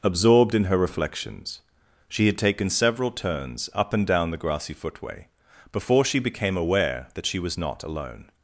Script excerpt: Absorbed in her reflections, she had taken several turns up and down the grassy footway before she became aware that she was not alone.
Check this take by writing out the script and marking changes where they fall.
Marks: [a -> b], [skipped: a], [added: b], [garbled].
Absorbed in her reflections, she had taken several turns up and down the grassy footway before she became aware that she was not alone.